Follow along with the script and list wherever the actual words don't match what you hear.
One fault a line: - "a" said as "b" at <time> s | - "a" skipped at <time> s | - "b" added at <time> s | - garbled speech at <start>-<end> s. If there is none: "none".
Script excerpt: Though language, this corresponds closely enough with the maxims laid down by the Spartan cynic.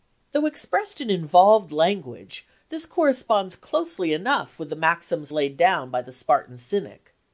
- "expressed in involved" added at 0.5 s